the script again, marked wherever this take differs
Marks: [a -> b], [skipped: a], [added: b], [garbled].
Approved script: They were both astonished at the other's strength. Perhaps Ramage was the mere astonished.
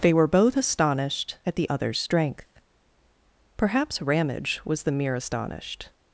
They were both astonished at the other's strength. Perhaps Ramage was the mere astonished.